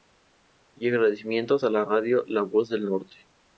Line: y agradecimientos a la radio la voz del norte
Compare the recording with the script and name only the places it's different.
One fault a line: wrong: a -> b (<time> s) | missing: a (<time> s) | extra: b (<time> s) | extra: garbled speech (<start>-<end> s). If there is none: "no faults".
no faults